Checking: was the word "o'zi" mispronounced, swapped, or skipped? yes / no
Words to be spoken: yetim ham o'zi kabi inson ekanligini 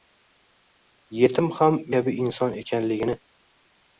yes